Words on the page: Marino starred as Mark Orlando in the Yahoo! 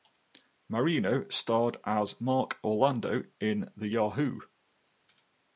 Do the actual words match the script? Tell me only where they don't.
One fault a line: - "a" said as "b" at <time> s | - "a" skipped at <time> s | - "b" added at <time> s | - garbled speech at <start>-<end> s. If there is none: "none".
none